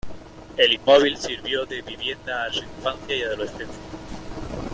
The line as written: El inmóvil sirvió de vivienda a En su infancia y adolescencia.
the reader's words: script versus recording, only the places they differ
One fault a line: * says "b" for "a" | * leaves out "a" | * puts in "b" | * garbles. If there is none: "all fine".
all fine